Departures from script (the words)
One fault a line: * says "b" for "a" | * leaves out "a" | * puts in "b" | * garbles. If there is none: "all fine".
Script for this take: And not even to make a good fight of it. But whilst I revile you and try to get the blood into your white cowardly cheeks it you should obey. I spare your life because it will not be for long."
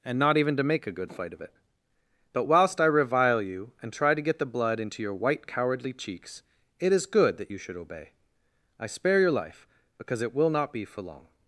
* puts in "is good that"